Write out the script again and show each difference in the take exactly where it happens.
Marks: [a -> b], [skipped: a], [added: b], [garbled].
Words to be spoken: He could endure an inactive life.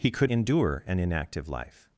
He could endure an inactive life.